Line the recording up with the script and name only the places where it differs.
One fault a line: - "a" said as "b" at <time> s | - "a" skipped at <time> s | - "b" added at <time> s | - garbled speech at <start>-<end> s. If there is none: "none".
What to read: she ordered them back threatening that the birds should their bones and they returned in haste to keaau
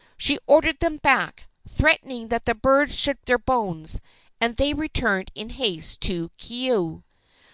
none